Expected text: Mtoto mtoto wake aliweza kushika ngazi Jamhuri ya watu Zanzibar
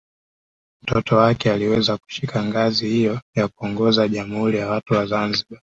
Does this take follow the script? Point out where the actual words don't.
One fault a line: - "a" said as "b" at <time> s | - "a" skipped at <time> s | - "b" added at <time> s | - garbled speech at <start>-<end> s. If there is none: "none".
- "mtoto" skipped at 1.1 s
- "hiyo ya kuongoza" added at 2.9 s
- "wa" added at 4.9 s